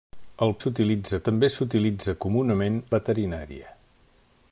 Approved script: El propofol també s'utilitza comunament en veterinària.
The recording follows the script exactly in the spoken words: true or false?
false